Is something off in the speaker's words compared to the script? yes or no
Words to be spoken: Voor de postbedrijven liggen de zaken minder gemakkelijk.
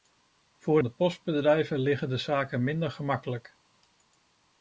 no